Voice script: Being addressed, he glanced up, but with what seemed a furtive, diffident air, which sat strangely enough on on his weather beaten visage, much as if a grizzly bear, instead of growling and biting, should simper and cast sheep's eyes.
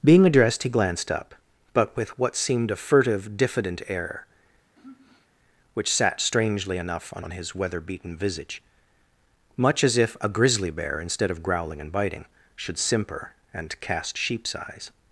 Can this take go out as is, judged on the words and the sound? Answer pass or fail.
fail